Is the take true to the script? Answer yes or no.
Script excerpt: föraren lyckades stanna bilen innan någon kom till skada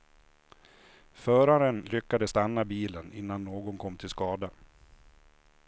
yes